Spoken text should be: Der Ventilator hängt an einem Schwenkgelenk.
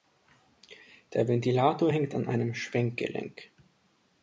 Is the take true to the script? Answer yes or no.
yes